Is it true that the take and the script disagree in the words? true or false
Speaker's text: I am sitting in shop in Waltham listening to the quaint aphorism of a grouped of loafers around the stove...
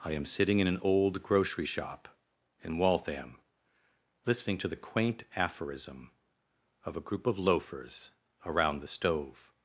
true